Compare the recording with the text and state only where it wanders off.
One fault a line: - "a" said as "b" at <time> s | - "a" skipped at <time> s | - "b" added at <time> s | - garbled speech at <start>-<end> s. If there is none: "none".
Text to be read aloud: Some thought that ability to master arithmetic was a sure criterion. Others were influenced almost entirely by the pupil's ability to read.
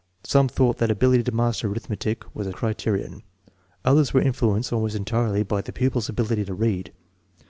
- "sure" skipped at 2.5 s